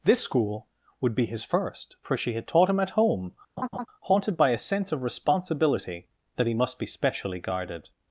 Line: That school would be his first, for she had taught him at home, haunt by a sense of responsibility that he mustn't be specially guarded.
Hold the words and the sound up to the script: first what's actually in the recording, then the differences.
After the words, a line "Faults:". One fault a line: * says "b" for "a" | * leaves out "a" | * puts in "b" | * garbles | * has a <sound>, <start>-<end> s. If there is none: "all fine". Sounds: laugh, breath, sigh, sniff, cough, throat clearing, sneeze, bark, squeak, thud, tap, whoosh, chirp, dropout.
This school would be his first, for she had taught him at home, haunted by a sense of responsibility that he must be specially guarded.
Faults:
* says "This" for "That"
* has a laugh, 3.6-3.9 s
* says "haunted" for "haunt"
* says "must" for "mustn't"